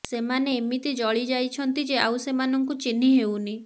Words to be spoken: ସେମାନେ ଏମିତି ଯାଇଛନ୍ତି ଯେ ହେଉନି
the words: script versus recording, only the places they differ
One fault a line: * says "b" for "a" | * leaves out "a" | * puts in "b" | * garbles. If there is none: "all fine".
* puts in "ଜଳି"
* puts in "ଆଉ ସେମାନଙ୍କୁ ଚିହ୍ନି"